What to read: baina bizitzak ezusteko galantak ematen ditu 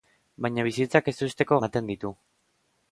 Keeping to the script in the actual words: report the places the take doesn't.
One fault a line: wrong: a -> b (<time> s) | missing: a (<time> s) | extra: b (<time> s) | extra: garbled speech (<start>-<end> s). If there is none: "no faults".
missing: galantak (1.6 s)